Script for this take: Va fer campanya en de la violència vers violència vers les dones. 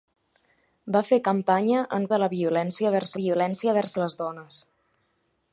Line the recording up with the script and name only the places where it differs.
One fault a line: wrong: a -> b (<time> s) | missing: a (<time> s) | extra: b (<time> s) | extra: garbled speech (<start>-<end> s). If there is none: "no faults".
no faults